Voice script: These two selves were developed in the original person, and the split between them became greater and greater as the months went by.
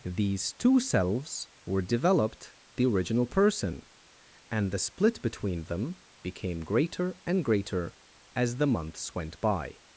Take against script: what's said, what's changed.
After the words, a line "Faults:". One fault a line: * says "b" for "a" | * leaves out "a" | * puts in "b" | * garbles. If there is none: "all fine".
These two selves were developed the original person, and the split between them became greater and greater as the months went by.
Faults:
* leaves out "in"